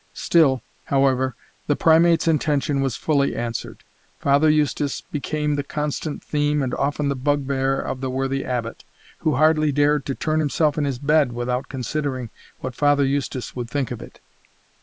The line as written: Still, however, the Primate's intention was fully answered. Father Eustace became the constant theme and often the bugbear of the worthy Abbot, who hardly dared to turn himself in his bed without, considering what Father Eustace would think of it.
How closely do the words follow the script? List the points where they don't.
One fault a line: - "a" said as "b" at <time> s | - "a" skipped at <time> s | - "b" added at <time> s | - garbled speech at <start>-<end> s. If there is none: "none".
none